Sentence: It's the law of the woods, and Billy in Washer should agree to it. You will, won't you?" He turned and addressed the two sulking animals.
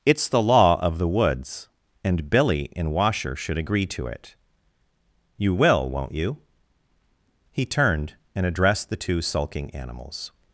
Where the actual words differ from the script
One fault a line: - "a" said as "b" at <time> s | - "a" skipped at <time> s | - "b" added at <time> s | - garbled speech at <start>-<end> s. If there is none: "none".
none